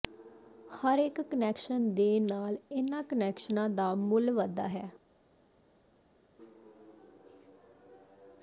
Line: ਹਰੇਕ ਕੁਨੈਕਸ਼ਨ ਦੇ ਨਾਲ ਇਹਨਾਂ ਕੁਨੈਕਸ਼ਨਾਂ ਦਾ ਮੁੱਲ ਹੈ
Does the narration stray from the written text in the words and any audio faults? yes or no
yes